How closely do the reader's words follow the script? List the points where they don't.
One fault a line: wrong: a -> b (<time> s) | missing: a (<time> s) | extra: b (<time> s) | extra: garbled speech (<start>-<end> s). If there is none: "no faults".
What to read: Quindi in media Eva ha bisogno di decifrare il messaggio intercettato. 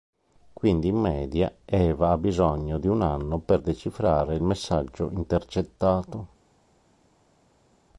extra: un anno per (2.9 s)